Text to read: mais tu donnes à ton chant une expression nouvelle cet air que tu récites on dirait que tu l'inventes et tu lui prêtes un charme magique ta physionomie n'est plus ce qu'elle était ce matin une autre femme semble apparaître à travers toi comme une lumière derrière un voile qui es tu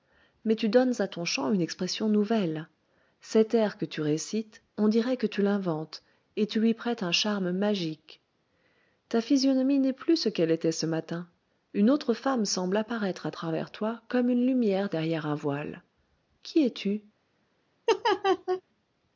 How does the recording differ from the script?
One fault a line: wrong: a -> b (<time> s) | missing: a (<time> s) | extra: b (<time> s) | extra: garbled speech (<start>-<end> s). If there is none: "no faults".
no faults